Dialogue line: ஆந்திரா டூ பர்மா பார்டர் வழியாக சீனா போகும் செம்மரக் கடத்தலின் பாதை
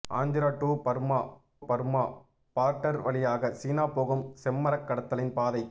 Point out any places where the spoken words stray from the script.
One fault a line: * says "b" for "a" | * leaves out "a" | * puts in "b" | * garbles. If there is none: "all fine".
* puts in "பர்மா"